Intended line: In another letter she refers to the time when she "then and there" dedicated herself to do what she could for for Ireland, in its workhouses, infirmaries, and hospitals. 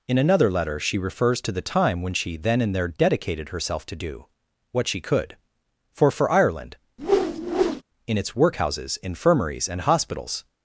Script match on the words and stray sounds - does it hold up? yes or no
no